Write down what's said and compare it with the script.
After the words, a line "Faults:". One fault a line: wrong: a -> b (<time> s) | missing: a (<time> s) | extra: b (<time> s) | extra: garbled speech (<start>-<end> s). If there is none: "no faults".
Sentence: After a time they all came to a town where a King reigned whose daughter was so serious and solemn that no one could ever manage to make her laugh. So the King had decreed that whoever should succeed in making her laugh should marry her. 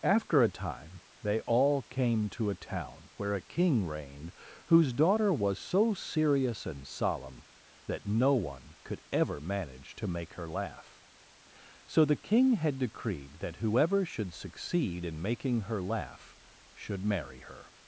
After a time they all came to a town where a King reigned whose daughter was so serious and solemn that no one could ever manage to make her laugh. So the King had decreed that whoever should succeed in making her laugh should marry her.
Faults:
no faults